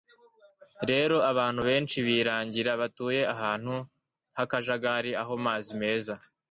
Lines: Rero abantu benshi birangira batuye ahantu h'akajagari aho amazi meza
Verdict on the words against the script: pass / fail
pass